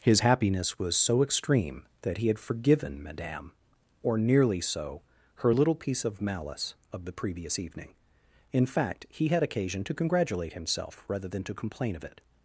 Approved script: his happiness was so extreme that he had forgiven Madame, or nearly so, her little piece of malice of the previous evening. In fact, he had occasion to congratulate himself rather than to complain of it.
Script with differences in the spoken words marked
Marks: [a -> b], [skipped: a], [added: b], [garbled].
his happiness was so extreme that he had forgiven Madame, or nearly so, her little piece of malice of the previous evening. In fact, he had occasion to congratulate himself rather than to complain of it.